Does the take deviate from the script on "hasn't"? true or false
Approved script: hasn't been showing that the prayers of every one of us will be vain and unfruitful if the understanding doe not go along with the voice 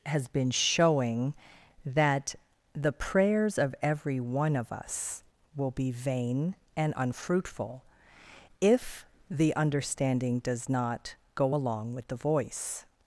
true